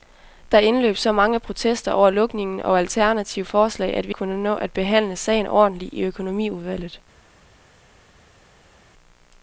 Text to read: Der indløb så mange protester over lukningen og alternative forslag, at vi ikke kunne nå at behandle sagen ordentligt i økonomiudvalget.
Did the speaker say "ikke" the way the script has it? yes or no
no